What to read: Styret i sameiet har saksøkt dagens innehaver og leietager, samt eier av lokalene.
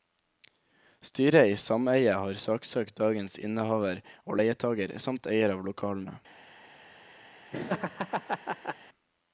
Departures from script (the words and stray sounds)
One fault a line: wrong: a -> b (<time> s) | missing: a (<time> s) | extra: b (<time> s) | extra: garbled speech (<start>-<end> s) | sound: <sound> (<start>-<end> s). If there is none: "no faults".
sound: laugh (7.5-8.8 s)